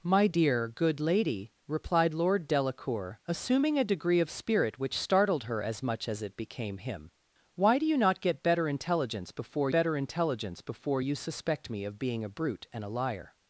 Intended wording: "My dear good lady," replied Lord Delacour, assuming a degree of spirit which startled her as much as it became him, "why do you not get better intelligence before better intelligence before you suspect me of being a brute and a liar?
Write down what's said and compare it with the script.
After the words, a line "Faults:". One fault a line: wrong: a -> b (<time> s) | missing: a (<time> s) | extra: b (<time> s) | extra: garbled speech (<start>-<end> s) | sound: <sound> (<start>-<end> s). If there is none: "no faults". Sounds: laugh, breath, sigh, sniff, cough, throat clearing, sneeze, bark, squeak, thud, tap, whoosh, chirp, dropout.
"My dear good lady," replied Lord Delacour, assuming a degree of spirit which startled her as much as it became him, "why do you not get better intelligence before better intelligence before you suspect me of being a brute and a liar?
Faults:
no faults